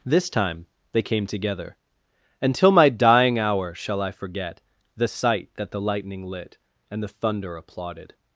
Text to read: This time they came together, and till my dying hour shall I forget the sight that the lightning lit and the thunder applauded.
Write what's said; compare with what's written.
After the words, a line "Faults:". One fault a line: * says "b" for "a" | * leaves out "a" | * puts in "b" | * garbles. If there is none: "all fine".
This time they came together, and till my dying hour shall I forget the sight that the lightning lit and the thunder applauded.
Faults:
all fine